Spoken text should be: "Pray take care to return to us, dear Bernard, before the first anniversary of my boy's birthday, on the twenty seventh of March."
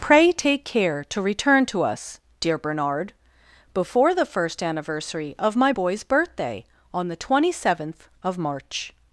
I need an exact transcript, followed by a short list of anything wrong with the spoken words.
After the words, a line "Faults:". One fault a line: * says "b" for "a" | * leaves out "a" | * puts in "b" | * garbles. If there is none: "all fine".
"Pray take care to return to us, dear Bernard, before the first anniversary of my boy's birthday, on the twenty seventh of March."
Faults:
all fine